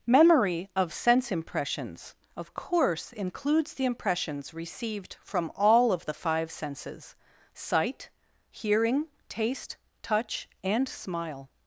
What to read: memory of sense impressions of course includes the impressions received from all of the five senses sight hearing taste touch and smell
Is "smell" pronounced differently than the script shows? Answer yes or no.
yes